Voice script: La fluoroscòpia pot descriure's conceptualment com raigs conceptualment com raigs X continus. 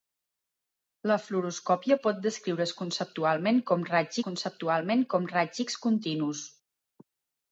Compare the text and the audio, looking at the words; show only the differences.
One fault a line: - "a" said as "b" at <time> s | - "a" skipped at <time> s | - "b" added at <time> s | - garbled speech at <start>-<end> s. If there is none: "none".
none